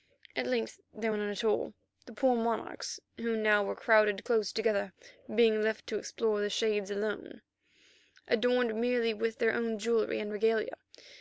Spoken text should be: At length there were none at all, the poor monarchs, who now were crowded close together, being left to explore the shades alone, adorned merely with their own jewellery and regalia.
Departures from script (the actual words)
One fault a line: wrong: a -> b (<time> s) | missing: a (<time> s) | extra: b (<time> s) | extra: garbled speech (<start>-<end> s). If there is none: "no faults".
no faults